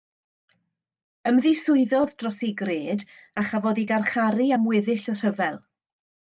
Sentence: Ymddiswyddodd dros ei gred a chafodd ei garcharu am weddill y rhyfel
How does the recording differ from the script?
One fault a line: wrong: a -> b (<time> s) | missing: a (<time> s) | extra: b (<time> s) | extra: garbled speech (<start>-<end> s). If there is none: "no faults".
no faults